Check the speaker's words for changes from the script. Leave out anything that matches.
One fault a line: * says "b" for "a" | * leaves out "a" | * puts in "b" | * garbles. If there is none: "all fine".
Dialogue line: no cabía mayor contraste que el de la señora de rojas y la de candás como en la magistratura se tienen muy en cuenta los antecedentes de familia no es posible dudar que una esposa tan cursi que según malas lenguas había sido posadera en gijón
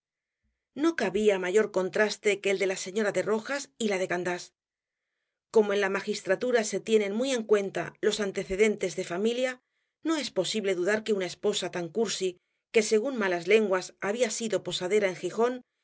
all fine